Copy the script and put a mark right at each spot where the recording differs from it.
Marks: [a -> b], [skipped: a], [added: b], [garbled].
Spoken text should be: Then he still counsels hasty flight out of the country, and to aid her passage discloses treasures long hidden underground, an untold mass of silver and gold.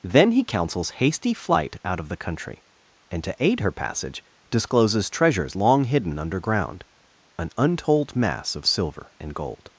Then he [skipped: still] counsels hasty flight out of the country, and to aid her passage discloses treasures long hidden underground, an untold mass of silver and gold.